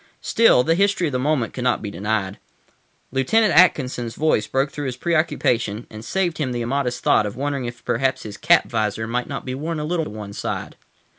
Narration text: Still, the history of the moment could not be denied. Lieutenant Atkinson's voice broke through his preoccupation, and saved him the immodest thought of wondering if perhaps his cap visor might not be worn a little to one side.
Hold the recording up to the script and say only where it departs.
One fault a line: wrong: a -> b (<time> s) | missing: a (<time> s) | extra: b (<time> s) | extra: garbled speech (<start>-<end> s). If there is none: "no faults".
no faults